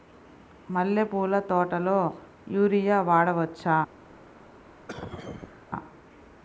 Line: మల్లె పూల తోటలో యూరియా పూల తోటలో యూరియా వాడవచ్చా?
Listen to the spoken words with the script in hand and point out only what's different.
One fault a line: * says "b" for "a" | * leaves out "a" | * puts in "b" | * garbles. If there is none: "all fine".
* leaves out "పూల తోటలో యూరియా"